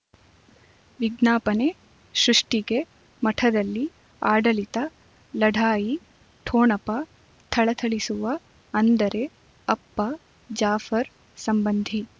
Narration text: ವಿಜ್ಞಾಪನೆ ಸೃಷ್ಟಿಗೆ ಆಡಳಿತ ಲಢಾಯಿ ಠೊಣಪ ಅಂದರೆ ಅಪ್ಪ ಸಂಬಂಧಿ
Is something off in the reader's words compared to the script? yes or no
yes